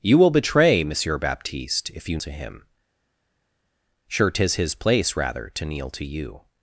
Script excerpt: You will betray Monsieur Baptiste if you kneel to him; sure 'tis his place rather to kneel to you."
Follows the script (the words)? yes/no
no